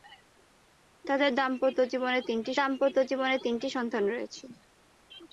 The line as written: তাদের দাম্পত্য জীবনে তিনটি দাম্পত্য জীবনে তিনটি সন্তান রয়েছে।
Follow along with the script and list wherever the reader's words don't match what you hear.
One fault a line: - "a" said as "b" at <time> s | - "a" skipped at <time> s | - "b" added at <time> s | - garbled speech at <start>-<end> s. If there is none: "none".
none